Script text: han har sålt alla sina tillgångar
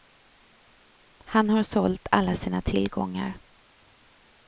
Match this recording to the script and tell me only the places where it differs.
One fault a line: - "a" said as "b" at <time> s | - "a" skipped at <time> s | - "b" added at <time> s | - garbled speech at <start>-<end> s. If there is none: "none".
none